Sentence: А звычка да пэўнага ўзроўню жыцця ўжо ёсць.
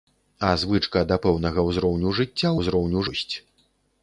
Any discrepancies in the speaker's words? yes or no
yes